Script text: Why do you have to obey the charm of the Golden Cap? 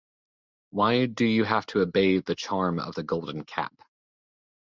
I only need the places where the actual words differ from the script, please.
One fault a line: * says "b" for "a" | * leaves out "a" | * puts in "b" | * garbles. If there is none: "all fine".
all fine